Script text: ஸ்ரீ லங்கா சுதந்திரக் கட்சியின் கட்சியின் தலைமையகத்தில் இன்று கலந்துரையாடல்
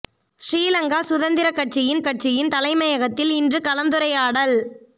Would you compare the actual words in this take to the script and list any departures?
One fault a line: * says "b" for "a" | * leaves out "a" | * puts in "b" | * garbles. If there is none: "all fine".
all fine